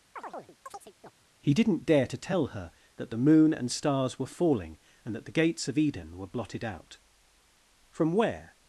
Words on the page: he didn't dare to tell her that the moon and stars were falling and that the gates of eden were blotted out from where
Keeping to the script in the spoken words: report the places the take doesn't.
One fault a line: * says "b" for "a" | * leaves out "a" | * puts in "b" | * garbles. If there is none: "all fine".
all fine